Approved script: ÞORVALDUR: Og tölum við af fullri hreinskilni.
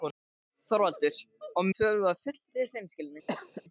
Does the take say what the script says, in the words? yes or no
yes